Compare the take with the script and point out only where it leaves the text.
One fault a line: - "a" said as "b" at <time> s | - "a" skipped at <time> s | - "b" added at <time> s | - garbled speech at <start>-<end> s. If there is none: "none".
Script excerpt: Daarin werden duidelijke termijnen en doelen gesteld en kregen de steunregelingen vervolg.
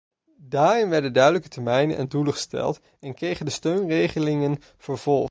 none